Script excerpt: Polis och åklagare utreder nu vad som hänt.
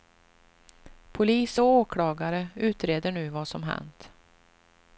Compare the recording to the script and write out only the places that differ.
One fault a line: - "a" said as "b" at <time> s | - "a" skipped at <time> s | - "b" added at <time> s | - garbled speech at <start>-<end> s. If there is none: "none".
none